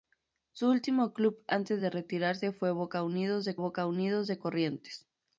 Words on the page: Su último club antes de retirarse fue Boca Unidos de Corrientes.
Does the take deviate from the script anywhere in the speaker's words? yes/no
yes